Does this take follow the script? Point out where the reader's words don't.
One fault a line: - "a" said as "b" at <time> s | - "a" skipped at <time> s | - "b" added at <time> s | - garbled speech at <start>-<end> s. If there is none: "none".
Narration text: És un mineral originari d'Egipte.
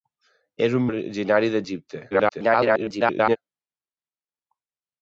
- "mineral" skipped at 0.9 s
- garbled speech at 2.1-3.4 s